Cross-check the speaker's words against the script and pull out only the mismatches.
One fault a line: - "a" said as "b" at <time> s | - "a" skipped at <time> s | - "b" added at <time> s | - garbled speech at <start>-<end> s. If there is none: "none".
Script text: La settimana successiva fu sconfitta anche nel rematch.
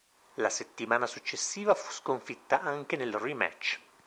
none